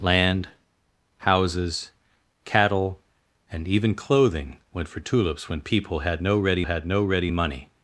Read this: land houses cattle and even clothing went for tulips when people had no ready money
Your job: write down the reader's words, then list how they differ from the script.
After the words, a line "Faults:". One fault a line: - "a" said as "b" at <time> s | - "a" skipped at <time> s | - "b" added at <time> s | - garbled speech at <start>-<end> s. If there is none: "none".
land houses cattle and even clothing went for tulips when people had no ready had no ready money
Faults:
- "had no ready" added at 6.6 s